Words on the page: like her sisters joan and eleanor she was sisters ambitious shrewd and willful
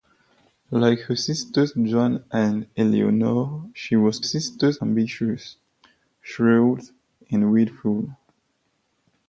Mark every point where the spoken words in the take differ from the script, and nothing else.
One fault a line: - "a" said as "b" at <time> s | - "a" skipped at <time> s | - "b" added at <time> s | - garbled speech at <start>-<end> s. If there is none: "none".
none